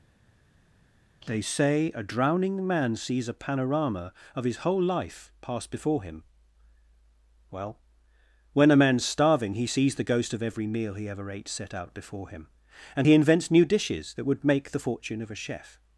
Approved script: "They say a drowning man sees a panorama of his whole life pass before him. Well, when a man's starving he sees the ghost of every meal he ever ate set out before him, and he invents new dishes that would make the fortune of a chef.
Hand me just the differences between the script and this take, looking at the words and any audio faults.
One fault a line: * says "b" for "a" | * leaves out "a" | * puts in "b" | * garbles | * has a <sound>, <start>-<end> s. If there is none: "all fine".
all fine